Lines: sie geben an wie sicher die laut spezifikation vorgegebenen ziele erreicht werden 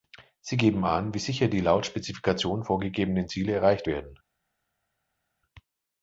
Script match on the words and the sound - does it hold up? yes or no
yes